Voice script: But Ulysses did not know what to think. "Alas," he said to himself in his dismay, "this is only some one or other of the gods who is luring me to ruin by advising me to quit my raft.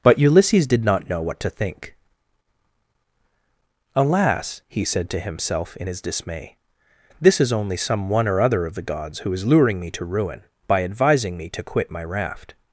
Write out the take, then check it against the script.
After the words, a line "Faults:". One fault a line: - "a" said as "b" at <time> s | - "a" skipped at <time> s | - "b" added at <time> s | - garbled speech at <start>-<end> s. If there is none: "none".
But Ulysses did not know what to think. "Alas," he said to himself in his dismay, "this is only some one or other of the gods who is luring me to ruin by advising me to quit my raft.
Faults:
none